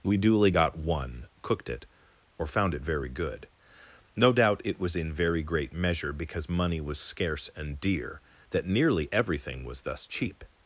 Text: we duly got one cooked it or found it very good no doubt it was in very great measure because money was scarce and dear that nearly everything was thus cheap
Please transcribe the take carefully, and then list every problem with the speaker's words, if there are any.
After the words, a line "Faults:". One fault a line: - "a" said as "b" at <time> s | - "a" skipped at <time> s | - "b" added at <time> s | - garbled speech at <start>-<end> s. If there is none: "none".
we duly got one cooked it or found it very good no doubt it was in very great measure because money was scarce and dear that nearly everything was thus cheap
Faults:
none